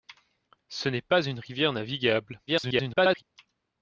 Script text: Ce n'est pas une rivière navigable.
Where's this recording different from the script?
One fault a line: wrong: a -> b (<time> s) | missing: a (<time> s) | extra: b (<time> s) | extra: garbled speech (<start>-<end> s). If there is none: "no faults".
extra: garbled speech (2.5-3.2 s)